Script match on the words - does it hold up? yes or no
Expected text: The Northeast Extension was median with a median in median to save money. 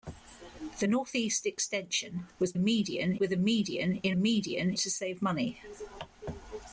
yes